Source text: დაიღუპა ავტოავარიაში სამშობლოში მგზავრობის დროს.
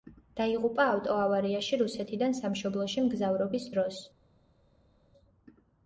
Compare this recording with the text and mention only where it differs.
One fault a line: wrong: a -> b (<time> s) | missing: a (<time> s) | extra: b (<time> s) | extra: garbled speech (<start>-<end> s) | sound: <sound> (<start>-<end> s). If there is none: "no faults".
extra: რუსეთიდან (1.8 s)